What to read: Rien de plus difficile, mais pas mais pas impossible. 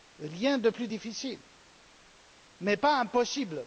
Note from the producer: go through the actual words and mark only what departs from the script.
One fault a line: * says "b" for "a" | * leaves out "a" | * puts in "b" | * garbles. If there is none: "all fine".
* leaves out "mais pas"